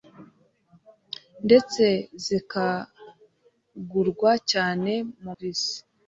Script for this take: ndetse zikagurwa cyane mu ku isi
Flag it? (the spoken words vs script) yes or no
no